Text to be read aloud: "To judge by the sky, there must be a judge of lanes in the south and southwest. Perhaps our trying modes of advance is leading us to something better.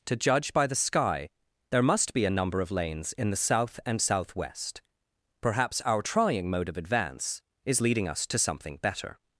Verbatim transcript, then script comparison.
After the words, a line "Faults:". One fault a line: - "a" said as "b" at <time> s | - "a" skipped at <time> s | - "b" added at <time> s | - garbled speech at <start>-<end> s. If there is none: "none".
"To judge by the sky, there must be a number of lanes in the south and southwest. Perhaps our trying mode of advance is leading us to something better.
Faults:
- "judge" said as "number" at 2.3 s
- "modes" said as "mode" at 6.5 s